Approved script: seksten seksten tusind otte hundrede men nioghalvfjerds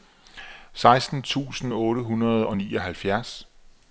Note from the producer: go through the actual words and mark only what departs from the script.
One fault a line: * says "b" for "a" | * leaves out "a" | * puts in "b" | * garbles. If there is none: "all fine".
* leaves out "seksten"
* says "og" for "men"